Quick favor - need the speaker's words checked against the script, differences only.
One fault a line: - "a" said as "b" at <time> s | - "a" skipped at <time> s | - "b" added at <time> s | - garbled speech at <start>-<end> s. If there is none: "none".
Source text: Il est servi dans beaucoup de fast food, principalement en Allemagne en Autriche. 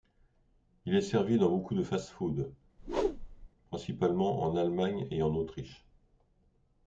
- "et" added at 5.1 s